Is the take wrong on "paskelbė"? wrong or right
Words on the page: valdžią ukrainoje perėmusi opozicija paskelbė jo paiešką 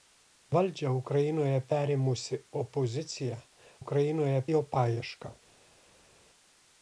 wrong